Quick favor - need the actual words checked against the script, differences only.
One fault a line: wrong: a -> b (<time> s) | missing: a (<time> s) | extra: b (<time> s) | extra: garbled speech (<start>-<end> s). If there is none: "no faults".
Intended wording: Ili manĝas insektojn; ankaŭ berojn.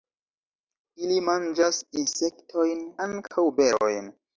no faults